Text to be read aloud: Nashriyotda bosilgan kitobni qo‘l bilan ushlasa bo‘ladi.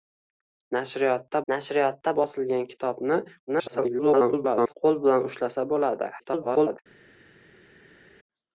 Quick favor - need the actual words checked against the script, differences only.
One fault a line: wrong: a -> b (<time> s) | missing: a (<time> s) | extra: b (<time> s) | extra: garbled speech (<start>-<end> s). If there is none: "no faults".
extra: nashriyotda (1.5 s)
extra: garbled speech (3.5-4.7 s)
extra: garbled speech (6.2-6.8 s)